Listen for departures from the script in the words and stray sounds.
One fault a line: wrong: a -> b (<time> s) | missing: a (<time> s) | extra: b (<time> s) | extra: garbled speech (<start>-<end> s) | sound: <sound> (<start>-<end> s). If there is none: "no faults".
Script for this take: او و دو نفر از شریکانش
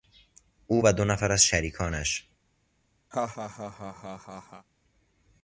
sound: laugh (3.1-4.7 s)